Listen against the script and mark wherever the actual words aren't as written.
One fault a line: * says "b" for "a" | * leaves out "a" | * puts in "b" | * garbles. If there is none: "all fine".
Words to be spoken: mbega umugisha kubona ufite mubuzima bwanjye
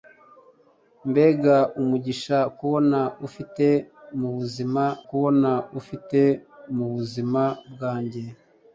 * puts in "kubona ufite mubuzima"